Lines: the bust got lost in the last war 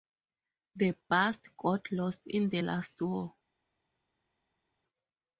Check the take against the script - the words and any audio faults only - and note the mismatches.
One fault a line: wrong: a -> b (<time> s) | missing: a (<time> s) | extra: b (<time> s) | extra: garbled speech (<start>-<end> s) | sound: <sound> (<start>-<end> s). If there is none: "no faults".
no faults